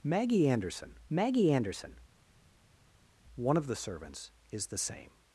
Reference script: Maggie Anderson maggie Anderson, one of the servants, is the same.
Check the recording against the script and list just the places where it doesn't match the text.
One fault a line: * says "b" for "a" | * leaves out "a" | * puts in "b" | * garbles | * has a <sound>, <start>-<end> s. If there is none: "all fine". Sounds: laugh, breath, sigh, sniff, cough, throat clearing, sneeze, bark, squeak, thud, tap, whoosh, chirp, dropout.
all fine